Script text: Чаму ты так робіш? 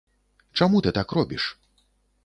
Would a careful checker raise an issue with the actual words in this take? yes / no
no